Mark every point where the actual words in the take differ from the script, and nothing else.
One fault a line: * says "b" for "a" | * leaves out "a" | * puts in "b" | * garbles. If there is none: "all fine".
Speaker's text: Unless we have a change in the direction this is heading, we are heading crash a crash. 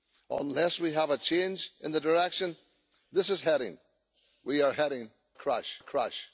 all fine